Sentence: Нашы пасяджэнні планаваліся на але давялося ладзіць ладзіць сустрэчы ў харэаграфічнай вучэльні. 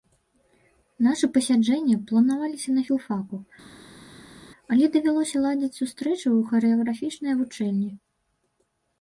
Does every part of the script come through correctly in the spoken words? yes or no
no